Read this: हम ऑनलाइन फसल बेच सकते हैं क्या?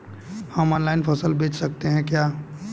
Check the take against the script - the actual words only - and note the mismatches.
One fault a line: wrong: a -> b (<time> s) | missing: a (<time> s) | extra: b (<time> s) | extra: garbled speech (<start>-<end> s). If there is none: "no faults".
no faults